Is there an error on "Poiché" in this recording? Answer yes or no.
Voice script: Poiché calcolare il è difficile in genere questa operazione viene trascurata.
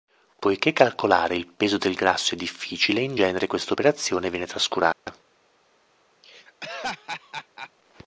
no